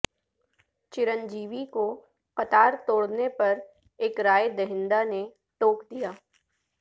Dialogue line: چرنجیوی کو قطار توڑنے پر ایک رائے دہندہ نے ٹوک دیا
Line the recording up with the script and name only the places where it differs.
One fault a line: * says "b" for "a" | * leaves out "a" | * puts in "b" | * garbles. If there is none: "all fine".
all fine